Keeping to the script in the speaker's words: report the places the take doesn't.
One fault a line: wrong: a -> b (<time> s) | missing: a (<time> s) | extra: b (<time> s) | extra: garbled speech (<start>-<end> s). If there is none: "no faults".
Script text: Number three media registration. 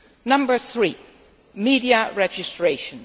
no faults